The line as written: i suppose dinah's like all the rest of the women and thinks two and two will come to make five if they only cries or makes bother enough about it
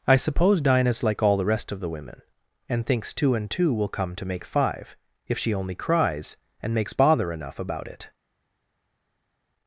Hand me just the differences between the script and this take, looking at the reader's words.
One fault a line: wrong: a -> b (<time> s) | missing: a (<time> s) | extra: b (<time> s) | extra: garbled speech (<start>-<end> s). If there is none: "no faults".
wrong: they -> she (5.4 s)
wrong: or -> and (6.6 s)